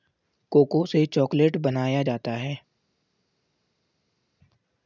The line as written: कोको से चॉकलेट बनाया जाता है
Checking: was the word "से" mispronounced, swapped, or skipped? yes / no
no